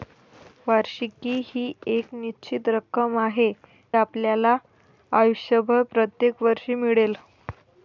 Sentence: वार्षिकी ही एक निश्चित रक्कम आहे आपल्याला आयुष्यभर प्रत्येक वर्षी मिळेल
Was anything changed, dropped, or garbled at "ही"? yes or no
no